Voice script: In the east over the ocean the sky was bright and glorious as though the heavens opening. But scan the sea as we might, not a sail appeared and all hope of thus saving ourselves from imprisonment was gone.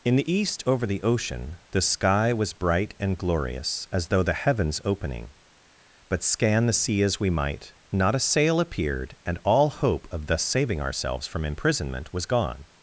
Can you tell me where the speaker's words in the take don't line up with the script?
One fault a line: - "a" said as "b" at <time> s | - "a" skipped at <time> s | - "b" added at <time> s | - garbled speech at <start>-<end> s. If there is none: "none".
none